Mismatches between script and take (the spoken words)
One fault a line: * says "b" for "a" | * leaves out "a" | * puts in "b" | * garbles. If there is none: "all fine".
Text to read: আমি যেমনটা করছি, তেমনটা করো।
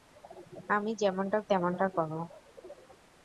* leaves out "করছি"